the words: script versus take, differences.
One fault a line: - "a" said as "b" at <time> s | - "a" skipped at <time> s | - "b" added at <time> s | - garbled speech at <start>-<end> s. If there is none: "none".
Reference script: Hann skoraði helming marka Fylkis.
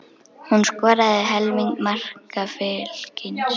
- "Hann" said as "Hún" at 0.5 s